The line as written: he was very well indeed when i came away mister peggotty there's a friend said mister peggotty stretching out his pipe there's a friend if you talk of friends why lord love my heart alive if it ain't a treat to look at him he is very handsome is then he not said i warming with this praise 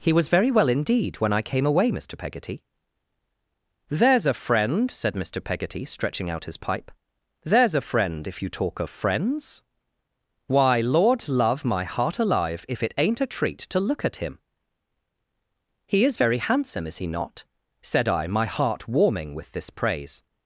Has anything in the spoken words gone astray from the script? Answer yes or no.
yes